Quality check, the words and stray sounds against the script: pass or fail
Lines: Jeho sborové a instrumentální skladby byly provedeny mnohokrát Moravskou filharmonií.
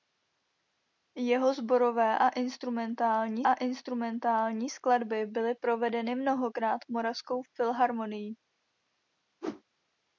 fail